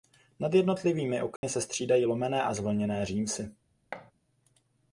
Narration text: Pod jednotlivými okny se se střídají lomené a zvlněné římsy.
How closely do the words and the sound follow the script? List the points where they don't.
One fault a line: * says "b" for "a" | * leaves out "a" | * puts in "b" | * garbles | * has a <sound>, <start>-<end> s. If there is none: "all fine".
* says "Nad" for "Pod"
* has a dropout, 1.4-1.4 s
* leaves out "se"
* has a thud, 3.9-4.1 s